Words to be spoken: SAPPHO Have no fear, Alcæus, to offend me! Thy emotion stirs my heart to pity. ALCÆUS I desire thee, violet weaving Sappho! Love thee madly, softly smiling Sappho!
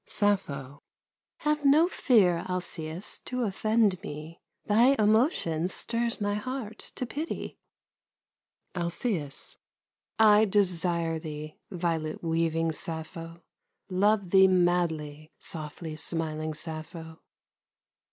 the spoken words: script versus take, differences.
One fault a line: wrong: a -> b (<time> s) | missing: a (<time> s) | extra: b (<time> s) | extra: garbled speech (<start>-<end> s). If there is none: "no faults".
no faults